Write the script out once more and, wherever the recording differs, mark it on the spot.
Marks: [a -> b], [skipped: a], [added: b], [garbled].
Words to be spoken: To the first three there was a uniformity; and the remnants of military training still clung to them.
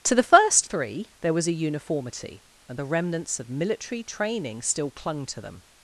To the first three there was a uniformity; and the remnants of military training still clung to them.